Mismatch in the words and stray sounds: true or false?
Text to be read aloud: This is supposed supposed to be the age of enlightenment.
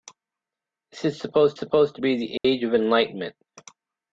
true